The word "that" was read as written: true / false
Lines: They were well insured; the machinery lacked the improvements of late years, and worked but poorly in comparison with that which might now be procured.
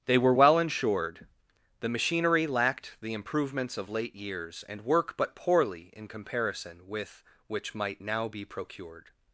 false